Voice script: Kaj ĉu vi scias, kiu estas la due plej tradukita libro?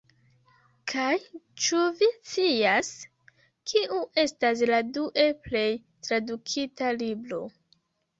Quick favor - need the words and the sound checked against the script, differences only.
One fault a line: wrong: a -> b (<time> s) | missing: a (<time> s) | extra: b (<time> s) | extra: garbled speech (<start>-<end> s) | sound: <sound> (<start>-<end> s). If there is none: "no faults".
no faults